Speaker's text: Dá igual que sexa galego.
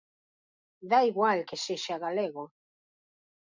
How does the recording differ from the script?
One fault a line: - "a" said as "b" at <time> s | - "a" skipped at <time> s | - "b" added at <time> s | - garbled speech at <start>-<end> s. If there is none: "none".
none